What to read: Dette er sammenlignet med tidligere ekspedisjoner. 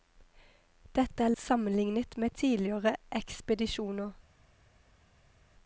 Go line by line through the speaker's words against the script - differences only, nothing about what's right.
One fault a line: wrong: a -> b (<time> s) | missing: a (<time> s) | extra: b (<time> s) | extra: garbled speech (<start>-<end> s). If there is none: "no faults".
no faults